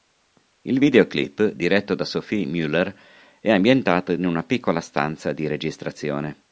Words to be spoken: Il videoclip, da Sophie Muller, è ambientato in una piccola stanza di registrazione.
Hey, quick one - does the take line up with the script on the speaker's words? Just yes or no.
no